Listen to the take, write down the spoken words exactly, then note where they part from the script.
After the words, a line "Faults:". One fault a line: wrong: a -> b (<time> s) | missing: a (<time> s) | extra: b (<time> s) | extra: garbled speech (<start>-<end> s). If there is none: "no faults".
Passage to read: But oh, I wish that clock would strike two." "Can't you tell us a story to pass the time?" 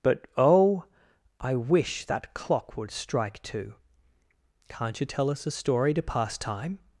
But oh, I wish that clock would strike two." "Can't you tell us a story to pass time?"
Faults:
missing: the (6.4 s)